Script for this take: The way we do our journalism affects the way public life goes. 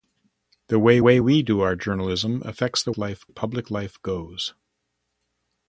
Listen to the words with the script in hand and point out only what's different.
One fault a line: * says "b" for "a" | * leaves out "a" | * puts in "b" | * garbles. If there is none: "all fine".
* puts in "way"
* says "life" for "way"